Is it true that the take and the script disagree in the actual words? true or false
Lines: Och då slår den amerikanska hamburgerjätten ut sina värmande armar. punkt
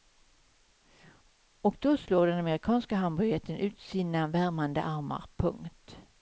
false